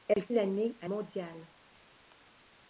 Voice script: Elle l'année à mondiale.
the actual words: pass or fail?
pass